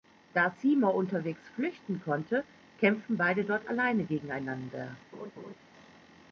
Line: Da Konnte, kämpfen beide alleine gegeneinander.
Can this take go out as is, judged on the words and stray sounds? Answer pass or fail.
fail